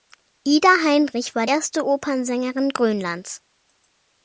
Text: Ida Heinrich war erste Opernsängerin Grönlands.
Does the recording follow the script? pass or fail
pass